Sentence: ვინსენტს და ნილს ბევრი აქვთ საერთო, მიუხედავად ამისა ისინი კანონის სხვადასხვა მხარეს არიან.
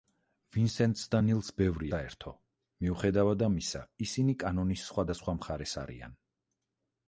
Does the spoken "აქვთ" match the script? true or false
false